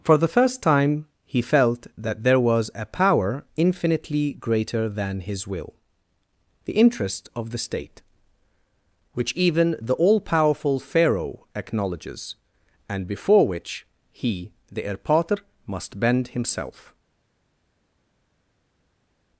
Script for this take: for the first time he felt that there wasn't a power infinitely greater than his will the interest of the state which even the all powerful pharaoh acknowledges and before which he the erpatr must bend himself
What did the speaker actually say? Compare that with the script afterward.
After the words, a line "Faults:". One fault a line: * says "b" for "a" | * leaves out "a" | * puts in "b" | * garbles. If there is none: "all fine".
for the first time he felt that there was a power infinitely greater than his will the interest of the state which even the all powerful pharaoh acknowledges and before which he the erpatr must bend himself
Faults:
* says "was" for "wasn't"